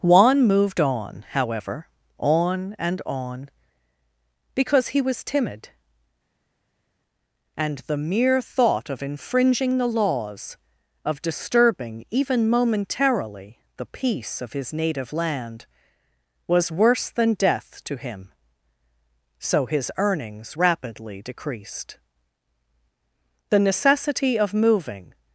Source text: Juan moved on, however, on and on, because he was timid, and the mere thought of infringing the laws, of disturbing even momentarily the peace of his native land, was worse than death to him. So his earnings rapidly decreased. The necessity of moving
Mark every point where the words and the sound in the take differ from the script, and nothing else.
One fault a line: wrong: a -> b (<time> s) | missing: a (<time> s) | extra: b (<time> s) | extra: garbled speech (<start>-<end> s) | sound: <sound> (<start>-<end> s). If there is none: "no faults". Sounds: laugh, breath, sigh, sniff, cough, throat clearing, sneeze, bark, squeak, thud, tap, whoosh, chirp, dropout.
no faults